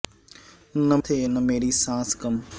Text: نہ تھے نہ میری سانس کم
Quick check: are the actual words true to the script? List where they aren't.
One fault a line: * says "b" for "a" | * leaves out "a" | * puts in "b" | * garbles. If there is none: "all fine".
all fine